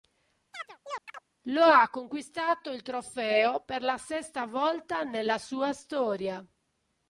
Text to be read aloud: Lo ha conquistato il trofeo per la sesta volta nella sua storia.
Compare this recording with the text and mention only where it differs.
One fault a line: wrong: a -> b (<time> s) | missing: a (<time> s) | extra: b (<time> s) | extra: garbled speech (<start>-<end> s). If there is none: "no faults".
no faults